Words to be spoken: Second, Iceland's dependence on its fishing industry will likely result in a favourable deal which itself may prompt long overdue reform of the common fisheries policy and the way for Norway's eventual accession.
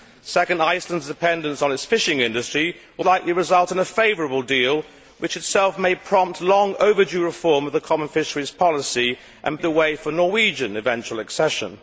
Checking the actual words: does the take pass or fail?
pass